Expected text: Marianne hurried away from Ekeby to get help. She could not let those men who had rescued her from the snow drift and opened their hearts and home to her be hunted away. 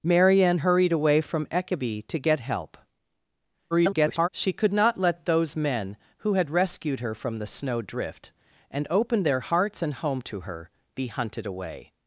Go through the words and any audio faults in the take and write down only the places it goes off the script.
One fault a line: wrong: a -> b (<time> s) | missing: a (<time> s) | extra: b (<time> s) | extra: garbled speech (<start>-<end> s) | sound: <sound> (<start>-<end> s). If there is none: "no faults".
extra: garbled speech (3.7-4.3 s)